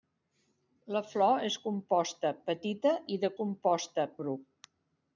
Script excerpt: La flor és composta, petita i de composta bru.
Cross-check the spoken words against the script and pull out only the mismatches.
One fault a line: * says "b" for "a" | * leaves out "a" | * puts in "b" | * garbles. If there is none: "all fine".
all fine